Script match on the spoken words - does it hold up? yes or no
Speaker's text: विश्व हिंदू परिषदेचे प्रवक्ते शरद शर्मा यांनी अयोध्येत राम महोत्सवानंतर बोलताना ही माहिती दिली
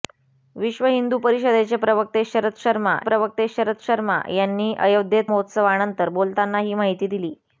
no